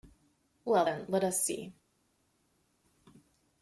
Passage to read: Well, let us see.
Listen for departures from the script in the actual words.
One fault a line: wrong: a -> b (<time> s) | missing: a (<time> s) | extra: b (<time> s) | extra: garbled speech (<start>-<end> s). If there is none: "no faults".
extra: then (0.8 s)